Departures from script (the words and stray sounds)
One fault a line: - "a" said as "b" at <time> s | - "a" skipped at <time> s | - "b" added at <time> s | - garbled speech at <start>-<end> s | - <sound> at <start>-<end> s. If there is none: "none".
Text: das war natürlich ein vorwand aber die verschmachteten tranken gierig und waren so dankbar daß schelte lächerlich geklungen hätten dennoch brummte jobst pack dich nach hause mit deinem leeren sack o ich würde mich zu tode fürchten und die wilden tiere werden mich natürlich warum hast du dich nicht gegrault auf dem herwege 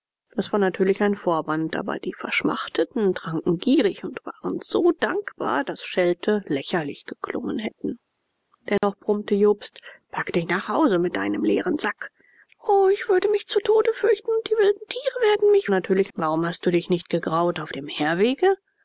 - dropout at 8.8-8.8 s